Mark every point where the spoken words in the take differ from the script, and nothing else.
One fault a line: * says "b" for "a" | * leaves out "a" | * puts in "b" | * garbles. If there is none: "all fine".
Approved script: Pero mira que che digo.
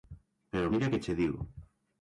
all fine